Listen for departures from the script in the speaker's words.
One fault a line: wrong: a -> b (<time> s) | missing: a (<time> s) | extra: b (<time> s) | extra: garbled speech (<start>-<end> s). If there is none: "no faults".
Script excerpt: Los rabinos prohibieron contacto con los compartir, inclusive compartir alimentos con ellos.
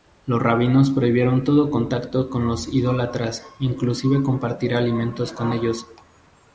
extra: todo (1.4 s)
wrong: compartir -> idólatras (2.7 s)